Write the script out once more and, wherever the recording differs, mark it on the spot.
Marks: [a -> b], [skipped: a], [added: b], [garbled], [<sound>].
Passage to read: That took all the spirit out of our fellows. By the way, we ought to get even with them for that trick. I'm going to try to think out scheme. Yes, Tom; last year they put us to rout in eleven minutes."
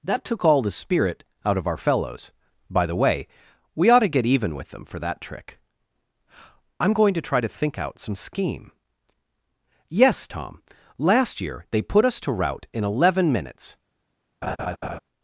That took all the spirit out of our fellows. By the way, we ought to get even with them for that trick. I'm going to try to think out [added: some] scheme. Yes, Tom; last year they put us to rout in eleven minutes." [laugh]